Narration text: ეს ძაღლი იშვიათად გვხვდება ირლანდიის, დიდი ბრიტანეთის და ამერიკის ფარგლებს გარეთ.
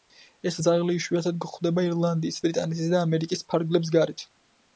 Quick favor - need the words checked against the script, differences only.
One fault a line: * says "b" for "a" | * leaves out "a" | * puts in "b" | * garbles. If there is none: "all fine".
* leaves out "დიდი"